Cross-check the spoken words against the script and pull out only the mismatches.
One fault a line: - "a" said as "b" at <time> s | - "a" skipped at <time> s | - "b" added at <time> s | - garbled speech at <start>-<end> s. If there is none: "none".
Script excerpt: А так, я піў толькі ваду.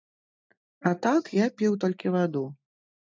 none